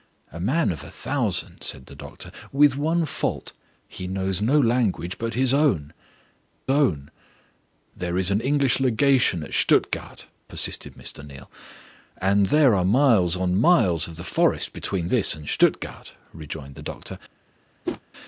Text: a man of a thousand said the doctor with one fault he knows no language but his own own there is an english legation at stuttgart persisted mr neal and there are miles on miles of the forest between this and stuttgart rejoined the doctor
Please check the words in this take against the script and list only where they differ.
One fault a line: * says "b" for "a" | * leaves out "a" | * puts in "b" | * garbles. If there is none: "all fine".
all fine